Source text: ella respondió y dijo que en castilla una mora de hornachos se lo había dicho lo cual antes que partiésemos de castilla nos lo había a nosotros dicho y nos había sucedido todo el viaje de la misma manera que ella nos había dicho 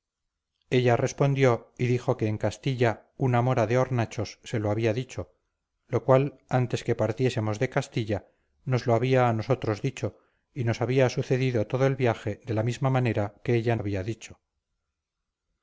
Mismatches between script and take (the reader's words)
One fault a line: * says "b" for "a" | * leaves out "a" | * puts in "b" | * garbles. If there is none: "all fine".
* leaves out "nos"